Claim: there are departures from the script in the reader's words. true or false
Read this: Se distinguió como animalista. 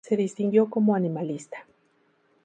false